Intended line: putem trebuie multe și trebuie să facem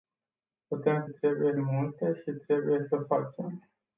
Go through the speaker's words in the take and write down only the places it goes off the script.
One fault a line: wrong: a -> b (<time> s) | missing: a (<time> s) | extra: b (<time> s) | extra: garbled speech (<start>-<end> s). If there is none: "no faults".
no faults